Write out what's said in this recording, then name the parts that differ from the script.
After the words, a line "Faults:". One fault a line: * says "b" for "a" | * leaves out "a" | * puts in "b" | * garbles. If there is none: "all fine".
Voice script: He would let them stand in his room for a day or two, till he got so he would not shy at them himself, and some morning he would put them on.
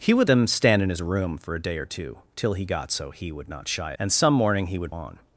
He would them stand in his room for a day or two, till he got so he would not shy and some morning he would on.
Faults:
* leaves out "let"
* leaves out "at them himself"
* leaves out "put them"